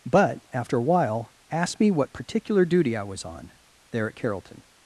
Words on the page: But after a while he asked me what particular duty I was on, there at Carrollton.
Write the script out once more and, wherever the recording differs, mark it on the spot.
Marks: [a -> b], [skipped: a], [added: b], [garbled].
But after a while [skipped: he] asked me what particular duty I was on, there at Carrollton.